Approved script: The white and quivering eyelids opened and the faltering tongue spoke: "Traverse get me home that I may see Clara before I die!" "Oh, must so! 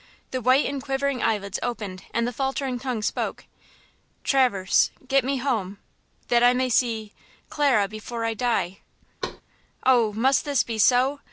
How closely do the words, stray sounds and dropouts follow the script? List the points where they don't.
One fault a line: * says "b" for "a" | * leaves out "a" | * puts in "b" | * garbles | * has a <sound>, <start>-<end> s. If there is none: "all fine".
* has a thud, 9.2-9.4 s
* puts in "this be"